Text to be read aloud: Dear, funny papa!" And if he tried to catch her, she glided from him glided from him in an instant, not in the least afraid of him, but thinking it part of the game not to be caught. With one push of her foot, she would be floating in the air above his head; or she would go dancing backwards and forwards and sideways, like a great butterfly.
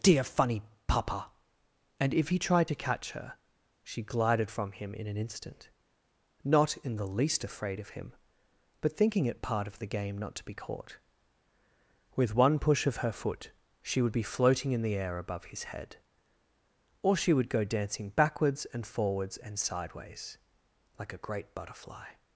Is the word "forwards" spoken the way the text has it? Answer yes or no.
yes